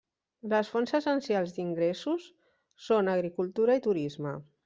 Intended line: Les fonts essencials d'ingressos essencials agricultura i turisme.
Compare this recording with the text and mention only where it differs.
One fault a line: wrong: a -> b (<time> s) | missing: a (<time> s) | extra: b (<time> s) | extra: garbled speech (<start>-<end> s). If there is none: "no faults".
wrong: essencials -> són (2.9 s)